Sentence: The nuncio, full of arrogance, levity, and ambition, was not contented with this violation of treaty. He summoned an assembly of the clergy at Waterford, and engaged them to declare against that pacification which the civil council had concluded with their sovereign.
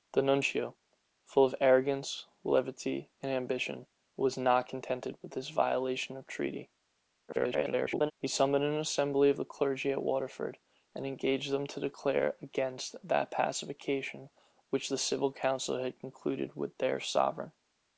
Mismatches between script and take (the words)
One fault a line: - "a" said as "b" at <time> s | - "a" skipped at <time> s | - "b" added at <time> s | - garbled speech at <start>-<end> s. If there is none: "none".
- garbled speech at 7.3-8.1 s